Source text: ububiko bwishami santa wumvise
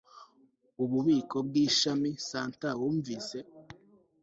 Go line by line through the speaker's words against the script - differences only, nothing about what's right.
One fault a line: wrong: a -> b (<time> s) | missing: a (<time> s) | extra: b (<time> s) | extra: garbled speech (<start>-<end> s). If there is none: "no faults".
no faults